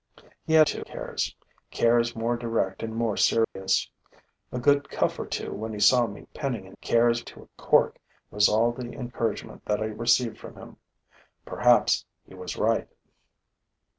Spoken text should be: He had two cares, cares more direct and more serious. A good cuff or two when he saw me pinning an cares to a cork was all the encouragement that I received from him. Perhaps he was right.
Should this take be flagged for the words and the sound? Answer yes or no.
yes